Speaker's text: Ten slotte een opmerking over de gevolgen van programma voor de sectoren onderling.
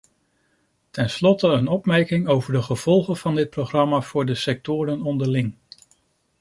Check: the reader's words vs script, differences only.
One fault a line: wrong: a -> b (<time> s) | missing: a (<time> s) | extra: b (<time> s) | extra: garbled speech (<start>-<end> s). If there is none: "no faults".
extra: dit (3.4 s)